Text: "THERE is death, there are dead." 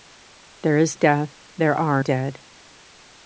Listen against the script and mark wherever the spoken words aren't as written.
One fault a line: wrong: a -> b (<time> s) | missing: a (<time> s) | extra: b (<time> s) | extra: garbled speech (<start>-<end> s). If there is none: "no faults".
no faults